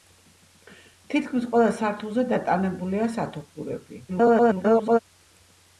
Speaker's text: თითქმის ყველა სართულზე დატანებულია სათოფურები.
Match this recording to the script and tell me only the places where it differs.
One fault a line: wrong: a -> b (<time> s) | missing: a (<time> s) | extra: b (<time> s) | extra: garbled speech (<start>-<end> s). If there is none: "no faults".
extra: garbled speech (4.1-5.0 s)